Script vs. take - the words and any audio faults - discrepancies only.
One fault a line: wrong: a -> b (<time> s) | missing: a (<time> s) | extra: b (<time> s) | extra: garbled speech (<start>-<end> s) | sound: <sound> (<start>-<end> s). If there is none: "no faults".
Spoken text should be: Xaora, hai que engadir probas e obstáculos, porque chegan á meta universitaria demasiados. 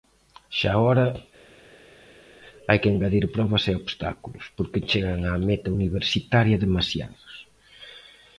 no faults